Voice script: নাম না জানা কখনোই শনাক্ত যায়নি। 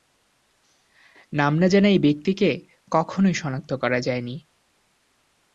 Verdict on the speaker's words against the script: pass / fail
fail